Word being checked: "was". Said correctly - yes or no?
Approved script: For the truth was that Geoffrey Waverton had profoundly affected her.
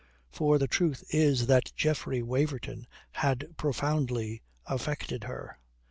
no